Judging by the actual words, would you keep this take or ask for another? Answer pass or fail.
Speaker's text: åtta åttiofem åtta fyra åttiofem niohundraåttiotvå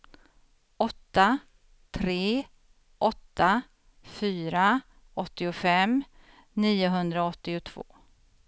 fail